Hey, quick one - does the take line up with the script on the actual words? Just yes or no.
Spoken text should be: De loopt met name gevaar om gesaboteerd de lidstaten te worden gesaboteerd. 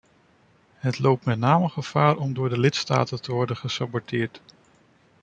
no